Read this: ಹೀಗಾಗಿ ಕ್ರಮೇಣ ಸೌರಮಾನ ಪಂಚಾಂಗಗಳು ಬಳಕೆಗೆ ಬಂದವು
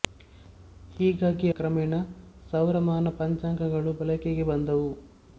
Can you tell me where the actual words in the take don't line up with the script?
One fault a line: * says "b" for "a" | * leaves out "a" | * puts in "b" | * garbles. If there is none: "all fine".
all fine